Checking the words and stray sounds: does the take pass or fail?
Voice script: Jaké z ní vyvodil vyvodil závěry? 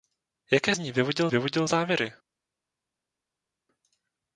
pass